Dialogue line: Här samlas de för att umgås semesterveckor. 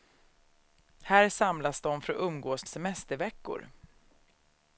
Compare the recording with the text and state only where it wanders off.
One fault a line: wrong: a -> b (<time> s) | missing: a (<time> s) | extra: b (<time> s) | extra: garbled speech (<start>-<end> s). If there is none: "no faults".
no faults